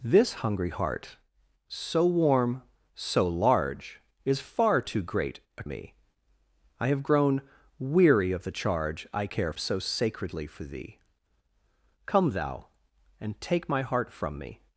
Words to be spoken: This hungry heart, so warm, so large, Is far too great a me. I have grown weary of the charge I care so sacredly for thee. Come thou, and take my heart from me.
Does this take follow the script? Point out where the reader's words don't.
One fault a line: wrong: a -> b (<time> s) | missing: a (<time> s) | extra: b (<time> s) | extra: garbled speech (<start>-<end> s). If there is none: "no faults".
no faults